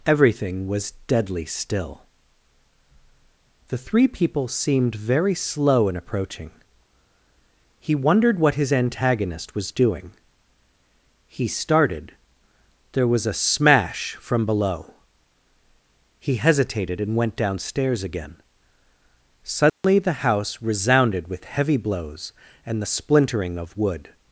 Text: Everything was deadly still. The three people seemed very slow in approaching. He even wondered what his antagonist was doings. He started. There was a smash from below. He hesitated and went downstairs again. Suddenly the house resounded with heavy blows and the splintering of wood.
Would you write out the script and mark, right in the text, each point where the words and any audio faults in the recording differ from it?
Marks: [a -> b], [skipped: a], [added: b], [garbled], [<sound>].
Everything was deadly still. The three people seemed very slow in approaching. He [skipped: even] wondered what his antagonist was [doings. -> doing] He started. There was a smash from below. He hesitated and went downstairs again. Suddenly [dropout] the house resounded with heavy blows and the splintering of wood.